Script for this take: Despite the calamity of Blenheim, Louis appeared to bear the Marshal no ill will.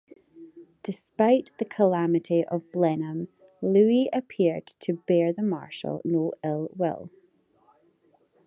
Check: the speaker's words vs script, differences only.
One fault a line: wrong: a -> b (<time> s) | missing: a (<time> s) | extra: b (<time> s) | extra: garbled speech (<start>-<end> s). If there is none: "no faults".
no faults